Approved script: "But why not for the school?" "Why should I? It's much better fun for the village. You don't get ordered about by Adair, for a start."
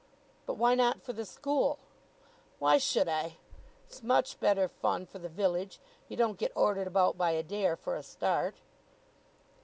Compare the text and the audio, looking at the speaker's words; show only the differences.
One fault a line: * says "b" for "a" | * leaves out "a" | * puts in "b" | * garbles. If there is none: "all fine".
all fine